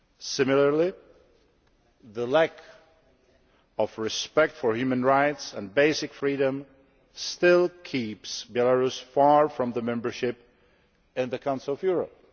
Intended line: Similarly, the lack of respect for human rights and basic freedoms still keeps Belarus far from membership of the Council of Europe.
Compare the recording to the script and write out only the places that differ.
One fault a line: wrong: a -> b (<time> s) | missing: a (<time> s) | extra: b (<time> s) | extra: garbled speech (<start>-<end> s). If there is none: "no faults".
no faults